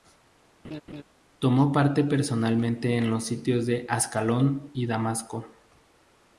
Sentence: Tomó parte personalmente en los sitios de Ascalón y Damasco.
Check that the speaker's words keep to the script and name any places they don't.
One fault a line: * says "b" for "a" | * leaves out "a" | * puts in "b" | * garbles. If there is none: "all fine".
all fine